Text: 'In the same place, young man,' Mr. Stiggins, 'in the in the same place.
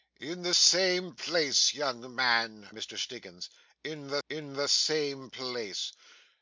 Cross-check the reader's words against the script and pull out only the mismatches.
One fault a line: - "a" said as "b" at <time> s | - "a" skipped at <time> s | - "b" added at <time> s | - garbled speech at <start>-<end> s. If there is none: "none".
none